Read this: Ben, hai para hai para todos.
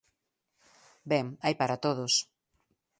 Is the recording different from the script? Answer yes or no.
yes